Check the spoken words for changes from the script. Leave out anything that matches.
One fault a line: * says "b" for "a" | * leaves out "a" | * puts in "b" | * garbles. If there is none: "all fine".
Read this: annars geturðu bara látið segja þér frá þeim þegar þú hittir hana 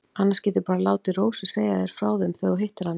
* puts in "rósu"